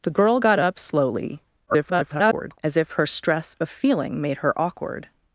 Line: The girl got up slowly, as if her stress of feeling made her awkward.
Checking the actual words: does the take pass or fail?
fail